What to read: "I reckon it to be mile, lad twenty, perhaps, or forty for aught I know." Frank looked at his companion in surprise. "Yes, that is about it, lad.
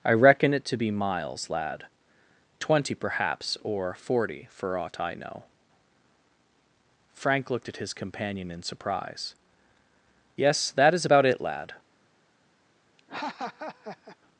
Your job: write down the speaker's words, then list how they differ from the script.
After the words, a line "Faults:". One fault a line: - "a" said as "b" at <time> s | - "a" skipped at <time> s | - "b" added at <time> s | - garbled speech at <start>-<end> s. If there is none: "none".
"I reckon it to be miles, lad twenty, perhaps, or forty for aught I know." Frank looked at his companion in surprise. "Yes, that is about it, lad.
Faults:
- "mile" said as "miles" at 0.9 s